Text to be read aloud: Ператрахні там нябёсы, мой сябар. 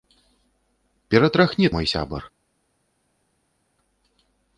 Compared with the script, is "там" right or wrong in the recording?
wrong